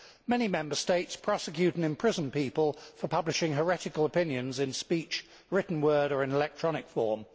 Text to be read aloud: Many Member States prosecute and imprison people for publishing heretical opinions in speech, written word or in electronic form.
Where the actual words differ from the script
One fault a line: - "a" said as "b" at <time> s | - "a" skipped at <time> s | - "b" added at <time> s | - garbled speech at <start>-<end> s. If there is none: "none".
none